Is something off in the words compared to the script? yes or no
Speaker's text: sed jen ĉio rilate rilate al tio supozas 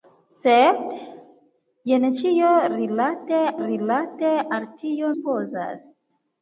no